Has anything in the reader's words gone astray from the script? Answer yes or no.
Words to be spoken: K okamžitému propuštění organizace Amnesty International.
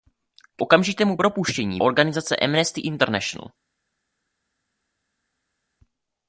no